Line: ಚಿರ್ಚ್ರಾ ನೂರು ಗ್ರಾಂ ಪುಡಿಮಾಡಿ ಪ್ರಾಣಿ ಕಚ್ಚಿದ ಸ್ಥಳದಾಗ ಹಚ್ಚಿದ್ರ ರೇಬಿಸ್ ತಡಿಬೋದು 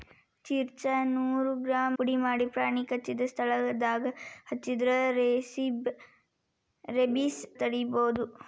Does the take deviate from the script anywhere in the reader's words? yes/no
no